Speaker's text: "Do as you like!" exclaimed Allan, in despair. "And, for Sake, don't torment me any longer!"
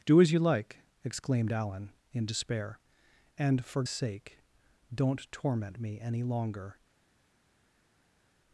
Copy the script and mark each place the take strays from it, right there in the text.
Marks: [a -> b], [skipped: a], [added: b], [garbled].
"Do as you like!" exclaimed Allan, in despair. "And, for Sake, don't torment me any longer!"